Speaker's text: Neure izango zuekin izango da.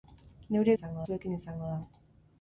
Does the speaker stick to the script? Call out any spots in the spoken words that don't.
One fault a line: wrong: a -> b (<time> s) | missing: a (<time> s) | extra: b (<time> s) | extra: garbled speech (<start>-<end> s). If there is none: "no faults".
no faults